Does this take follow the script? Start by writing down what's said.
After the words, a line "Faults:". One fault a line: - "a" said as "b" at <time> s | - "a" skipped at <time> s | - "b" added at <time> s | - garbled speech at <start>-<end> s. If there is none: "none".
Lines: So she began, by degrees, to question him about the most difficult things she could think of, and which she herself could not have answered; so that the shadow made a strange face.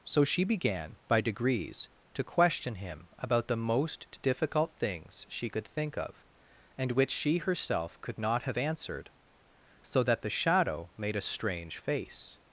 So she began, by degrees, to question him about the most difficult things she could think of, and which she herself could not have answered; so that the shadow made a strange face.
Faults:
none